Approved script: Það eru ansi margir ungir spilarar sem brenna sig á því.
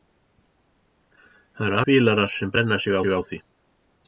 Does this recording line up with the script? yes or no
no